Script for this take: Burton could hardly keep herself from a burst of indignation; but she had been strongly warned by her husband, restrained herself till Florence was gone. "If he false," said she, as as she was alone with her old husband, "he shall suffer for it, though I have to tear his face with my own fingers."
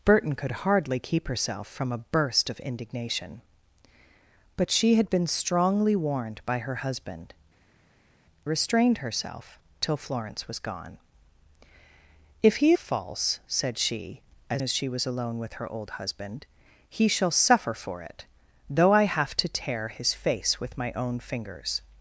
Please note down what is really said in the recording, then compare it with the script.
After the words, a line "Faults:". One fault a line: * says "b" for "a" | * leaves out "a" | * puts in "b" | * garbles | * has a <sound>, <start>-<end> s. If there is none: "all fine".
Burton could hardly keep herself from a burst of indignation; but she had been strongly warned by her husband, restrained herself till Florence was gone. "If he false," said she, as as she was alone with her old husband, "he shall suffer for it, though I have to tear his face with my own fingers."
Faults:
all fine